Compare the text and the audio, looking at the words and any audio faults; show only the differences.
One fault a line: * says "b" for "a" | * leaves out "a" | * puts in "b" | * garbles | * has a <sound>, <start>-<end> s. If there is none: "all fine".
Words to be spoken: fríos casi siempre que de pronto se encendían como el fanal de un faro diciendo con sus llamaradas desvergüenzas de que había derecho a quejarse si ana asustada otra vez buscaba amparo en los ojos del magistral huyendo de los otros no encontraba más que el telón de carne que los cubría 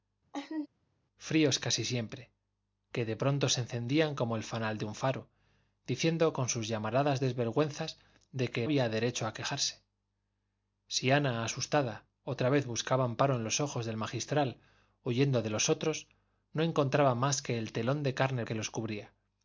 * has a laugh, 0.3-0.7 s